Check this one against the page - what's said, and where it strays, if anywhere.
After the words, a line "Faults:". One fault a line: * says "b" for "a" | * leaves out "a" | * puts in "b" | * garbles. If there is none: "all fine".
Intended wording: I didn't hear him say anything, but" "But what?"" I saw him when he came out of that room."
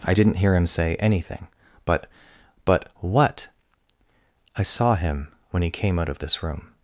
I didn't hear him say anything, but" "But what?"" I saw him when he came out of this room."
Faults:
* says "this" for "that"